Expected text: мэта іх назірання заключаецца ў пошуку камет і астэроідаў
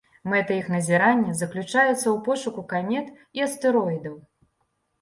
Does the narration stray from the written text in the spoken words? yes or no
no